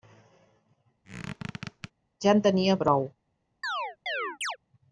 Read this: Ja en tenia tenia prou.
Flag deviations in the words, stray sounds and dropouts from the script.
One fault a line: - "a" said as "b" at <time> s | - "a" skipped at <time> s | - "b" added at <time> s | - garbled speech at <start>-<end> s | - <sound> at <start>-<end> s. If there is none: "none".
- squeak at 1.0-1.9 s
- "tenia" skipped at 2.8 s
- chirp at 3.6-4.6 s